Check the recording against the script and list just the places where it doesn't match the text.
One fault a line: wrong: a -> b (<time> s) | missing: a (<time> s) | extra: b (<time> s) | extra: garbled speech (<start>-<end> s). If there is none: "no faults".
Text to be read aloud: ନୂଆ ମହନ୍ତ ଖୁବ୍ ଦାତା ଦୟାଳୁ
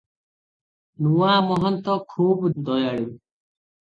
missing: ଦାତା (2.5 s)